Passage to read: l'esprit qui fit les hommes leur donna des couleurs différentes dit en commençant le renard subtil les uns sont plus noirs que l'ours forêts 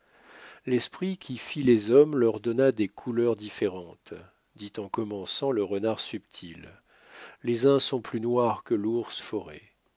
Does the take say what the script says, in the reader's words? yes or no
yes